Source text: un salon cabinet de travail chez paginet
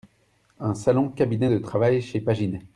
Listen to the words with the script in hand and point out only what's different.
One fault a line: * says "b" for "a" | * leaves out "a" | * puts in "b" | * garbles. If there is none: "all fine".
all fine